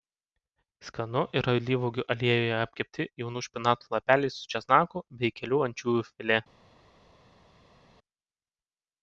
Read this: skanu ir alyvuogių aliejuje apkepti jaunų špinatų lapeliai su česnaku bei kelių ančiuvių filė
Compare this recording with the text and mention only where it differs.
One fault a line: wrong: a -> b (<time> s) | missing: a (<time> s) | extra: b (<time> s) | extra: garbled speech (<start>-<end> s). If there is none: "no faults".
no faults